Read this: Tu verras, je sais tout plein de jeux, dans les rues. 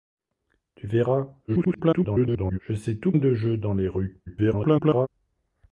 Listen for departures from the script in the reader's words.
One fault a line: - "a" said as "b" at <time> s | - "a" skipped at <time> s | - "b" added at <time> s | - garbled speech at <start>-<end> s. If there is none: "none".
- garbled speech at 1.5-2.6 s
- "plein" skipped at 3.1 s
- garbled speech at 4.3-5.1 s